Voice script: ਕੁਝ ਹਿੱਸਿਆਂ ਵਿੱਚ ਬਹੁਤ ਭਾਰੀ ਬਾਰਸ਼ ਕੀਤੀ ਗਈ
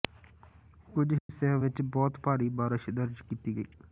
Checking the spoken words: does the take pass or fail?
fail